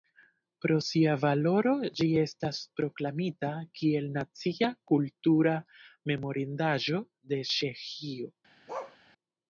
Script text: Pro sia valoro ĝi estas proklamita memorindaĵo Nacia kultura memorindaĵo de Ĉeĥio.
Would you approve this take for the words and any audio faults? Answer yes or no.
no